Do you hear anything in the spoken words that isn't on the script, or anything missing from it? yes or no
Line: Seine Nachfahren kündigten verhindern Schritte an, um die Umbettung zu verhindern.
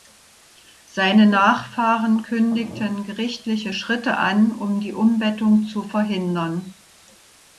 yes